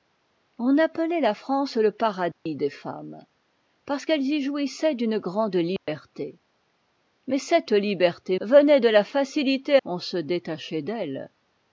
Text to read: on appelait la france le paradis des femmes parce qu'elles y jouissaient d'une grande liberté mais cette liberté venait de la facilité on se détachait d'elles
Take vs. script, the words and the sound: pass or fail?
fail